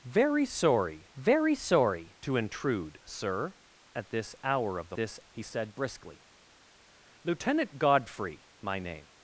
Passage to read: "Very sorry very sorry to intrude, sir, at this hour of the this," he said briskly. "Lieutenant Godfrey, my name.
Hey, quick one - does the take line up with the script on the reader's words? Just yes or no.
yes